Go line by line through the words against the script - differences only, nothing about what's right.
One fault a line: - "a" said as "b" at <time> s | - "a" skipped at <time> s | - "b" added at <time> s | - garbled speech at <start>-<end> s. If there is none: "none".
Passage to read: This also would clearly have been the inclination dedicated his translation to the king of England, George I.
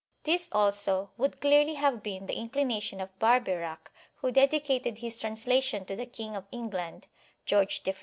- "of Barbeyrac who" added at 3.0 s